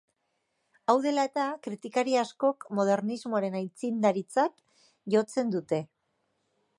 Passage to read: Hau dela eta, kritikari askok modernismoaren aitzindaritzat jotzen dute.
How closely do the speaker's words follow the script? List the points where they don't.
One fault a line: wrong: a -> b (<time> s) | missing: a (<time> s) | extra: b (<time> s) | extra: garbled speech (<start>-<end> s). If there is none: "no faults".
no faults